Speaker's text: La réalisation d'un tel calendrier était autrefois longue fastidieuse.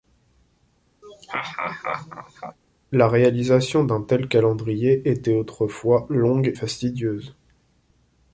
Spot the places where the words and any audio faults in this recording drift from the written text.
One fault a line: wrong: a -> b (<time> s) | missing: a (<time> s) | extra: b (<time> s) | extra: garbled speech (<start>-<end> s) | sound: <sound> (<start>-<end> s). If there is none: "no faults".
sound: laugh (1.0-2.6 s)